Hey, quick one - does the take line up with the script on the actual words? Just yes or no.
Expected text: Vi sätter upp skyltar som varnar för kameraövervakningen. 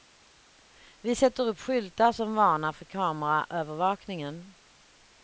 yes